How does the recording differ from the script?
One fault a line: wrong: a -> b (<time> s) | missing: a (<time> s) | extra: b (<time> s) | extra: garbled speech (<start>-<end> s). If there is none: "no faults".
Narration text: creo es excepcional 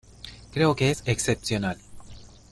extra: que (0.8 s)